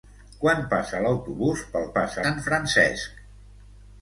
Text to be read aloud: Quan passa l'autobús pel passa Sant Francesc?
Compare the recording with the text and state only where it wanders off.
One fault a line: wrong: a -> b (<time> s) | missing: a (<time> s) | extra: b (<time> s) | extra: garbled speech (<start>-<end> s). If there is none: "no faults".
no faults